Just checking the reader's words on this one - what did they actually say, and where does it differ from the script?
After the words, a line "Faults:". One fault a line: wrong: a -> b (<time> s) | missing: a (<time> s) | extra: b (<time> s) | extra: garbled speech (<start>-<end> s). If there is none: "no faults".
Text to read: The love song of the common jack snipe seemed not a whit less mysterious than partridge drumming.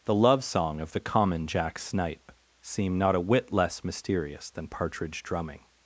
The love song of the common jack snipe seem not a whit less mysterious than partridge drumming.
Faults:
wrong: seemed -> seem (2.6 s)